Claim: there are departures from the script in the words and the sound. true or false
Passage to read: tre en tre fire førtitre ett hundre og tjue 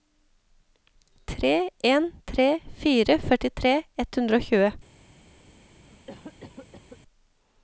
true